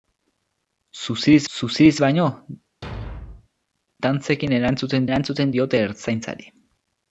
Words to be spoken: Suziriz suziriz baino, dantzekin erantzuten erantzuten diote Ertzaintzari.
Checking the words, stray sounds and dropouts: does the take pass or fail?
fail